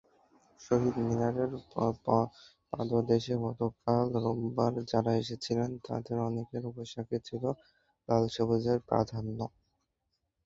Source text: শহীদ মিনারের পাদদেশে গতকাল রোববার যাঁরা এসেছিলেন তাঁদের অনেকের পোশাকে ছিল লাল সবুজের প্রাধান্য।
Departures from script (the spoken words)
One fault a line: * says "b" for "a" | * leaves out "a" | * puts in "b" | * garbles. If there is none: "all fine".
all fine